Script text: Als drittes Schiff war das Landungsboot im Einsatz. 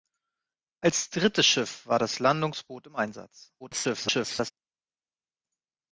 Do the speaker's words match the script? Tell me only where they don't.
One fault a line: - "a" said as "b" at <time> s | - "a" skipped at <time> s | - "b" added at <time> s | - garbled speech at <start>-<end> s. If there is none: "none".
- garbled speech at 3.6-4.5 s